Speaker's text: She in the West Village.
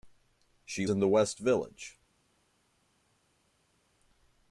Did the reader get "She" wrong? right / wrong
right